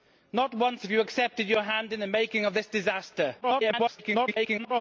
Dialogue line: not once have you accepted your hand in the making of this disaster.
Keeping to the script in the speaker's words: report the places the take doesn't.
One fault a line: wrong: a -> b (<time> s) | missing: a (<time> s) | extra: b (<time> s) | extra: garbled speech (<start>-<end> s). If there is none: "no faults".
extra: garbled speech (3.4-4.8 s)